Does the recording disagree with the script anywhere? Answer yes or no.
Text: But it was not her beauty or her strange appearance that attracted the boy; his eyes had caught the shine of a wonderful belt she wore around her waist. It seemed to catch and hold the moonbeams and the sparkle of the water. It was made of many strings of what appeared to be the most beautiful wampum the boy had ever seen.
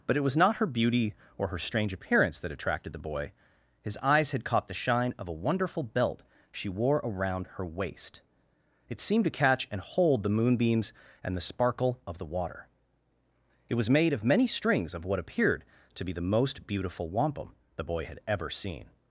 no